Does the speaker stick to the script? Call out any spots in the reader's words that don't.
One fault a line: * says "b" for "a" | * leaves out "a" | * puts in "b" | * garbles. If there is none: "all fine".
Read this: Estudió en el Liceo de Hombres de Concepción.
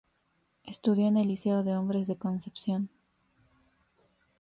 all fine